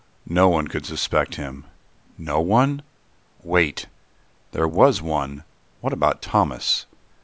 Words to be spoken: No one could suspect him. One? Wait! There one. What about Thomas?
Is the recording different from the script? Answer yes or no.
yes